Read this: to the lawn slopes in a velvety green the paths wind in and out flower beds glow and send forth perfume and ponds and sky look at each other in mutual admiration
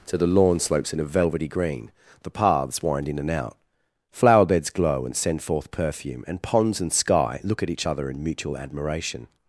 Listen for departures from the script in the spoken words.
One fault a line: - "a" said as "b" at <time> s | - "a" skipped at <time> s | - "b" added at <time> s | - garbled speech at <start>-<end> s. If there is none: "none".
none